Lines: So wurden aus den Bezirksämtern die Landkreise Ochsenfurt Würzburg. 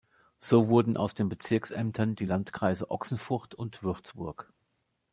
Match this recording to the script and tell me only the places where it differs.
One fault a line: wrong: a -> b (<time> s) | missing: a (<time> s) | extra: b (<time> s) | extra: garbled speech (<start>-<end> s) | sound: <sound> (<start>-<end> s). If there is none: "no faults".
extra: und (3.5 s)